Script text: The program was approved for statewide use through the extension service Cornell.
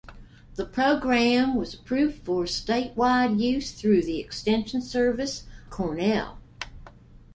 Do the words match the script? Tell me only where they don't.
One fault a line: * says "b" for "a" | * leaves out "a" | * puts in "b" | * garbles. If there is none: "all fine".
all fine